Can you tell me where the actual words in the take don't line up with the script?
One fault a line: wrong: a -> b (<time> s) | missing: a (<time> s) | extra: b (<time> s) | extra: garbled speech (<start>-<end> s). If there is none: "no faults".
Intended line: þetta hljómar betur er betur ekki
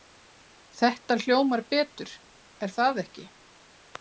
wrong: betur -> það (2.8 s)